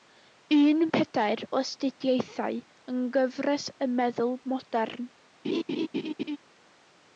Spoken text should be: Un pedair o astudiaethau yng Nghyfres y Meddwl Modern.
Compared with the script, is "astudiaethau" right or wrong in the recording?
right